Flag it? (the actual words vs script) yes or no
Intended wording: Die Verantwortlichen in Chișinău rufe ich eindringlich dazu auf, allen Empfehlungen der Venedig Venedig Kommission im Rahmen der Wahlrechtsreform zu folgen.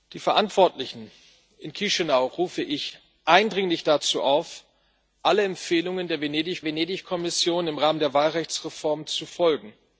no